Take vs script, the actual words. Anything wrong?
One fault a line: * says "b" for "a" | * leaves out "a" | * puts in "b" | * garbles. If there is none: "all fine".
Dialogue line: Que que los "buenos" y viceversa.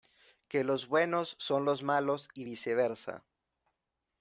* says "los buenos son" for "que"
* says "malos" for "buenos"